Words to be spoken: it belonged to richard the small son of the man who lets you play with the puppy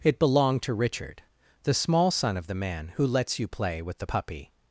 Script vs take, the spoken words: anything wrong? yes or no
no